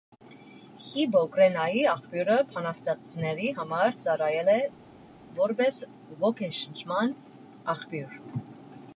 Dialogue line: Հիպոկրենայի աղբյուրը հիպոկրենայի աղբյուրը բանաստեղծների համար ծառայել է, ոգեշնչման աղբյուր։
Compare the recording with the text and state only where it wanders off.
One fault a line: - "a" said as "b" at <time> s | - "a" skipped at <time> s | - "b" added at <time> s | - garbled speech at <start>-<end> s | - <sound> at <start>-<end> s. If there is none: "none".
- "հիպոկրենայի աղբյուրը" skipped at 2.4 s
- "որպես" added at 5.4 s